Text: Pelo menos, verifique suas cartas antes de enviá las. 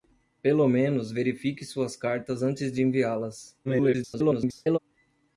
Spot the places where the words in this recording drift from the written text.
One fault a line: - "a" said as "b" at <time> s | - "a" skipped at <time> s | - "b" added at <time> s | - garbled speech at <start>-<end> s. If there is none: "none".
- garbled speech at 3.6-4.8 s